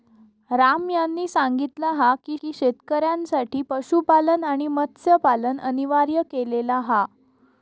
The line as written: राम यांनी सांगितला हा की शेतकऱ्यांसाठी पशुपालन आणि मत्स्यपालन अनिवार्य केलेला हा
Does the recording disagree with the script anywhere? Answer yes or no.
yes